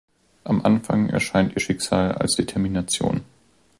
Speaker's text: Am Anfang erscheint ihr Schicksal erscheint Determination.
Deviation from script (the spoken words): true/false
true